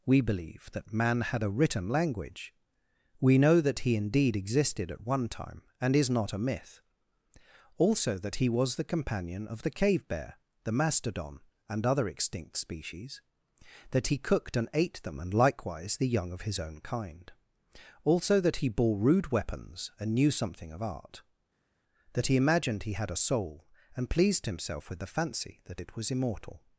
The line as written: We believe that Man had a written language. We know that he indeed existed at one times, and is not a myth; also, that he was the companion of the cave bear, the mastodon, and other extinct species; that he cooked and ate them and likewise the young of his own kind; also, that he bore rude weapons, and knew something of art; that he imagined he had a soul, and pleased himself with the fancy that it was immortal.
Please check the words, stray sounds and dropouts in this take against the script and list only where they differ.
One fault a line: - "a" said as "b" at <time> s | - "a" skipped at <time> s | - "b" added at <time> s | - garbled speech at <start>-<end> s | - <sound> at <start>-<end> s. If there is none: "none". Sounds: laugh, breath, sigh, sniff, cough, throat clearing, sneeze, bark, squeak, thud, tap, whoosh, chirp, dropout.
- "times" said as "time" at 5.3 s